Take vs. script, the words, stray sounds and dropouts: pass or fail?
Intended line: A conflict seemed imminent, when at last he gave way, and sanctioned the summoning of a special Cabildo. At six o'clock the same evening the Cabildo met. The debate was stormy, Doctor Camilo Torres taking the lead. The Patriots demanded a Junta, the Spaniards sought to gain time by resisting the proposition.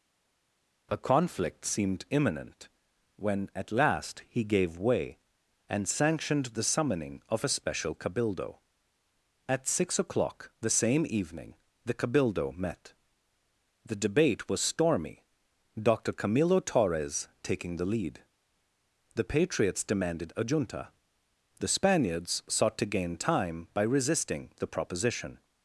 pass